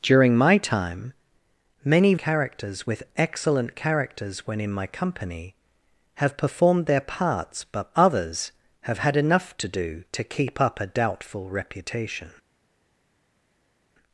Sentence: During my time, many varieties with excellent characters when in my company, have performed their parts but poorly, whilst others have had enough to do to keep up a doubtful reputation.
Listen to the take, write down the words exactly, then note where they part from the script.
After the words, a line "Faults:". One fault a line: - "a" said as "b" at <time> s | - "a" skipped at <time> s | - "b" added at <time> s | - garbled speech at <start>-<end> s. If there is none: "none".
During my time, many characters with excellent characters when in my company, have performed their parts but others have had enough to do to keep up a doubtful reputation.
Faults:
- "varieties" said as "characters" at 2.2 s
- "poorly whilst" skipped at 7.9 s